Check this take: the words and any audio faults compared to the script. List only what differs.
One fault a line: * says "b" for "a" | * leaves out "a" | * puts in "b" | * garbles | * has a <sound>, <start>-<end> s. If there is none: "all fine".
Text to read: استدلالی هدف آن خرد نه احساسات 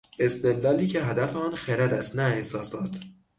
* puts in "که"
* puts in "است"